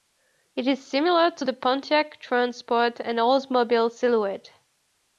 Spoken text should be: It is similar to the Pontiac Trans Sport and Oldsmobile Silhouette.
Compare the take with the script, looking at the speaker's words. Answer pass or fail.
pass